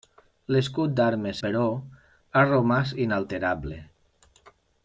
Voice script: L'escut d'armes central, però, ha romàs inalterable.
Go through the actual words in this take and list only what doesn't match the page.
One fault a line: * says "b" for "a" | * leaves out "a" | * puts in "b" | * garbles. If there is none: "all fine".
* leaves out "central"